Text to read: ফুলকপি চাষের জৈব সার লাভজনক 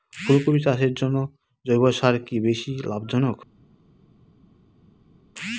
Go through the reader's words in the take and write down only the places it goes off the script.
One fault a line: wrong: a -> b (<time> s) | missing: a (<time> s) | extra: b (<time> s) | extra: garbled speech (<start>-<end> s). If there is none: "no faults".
extra: জন্য (0.9 s)
extra: কি বেশী (2.2 s)